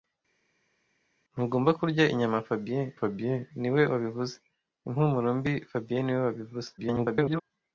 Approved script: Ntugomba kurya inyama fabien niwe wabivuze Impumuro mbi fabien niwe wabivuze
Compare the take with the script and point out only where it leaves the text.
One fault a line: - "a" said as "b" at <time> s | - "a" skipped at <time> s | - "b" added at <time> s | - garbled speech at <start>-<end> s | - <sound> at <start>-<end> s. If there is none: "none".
- "fabien" added at 3.0 s
- garbled speech at 6.8-7.4 s